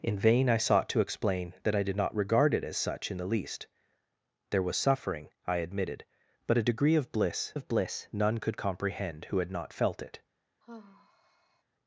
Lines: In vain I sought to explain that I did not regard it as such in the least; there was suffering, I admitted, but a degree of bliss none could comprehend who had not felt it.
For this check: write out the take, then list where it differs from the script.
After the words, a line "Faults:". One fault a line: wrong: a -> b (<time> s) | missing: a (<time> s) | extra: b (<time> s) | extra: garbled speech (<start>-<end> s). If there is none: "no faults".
In vain I sought to explain that I did not regard it as such in the least; there was suffering, I admitted, but a degree of bliss of bliss none could comprehend who had not felt it.
Faults:
extra: of bliss (7.5 s)